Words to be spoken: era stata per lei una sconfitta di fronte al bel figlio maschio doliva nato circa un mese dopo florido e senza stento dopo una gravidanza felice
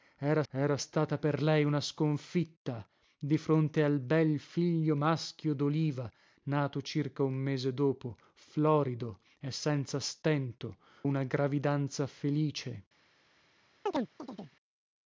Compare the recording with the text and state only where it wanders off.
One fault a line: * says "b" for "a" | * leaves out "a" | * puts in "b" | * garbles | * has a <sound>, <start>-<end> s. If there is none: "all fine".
* puts in "era"
* leaves out "dopo"
* has a chirp, 13.9-14.6 s